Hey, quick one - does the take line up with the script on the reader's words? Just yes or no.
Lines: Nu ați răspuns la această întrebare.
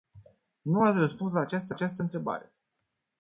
no